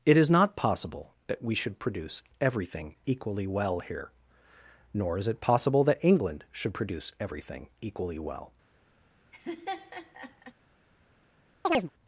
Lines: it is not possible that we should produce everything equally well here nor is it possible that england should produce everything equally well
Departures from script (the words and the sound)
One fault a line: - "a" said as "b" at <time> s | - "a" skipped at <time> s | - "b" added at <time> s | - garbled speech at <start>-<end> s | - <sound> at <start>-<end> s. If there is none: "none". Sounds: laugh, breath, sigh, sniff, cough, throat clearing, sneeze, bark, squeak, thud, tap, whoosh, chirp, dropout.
- laugh at 9.3-10.5 s
- chirp at 11.6-11.9 s